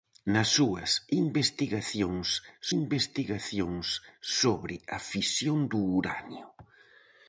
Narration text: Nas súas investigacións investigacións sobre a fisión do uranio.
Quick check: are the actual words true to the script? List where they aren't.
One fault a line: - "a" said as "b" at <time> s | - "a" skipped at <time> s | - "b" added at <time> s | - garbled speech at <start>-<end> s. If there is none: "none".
none